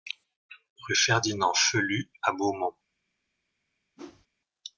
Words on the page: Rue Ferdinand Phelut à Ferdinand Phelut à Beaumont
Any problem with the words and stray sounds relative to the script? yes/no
yes